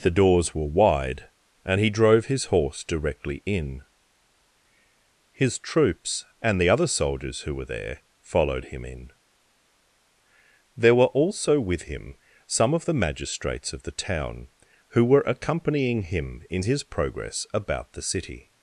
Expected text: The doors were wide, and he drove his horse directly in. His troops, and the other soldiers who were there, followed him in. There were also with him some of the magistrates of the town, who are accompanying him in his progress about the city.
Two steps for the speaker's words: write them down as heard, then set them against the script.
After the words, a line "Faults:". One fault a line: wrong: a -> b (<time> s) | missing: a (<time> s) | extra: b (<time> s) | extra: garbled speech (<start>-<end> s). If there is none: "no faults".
The doors were wide, and he drove his horse directly in. His troops, and the other soldiers who were there, followed him in. There were also with him some of the magistrates of the town, who were accompanying him in his progress about the city.
Faults:
wrong: are -> were (15.0 s)